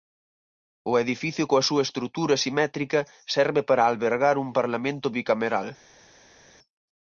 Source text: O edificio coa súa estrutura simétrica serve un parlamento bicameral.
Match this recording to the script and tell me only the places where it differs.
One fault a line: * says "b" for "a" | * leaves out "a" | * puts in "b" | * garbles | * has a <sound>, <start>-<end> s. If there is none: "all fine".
* puts in "para albergar"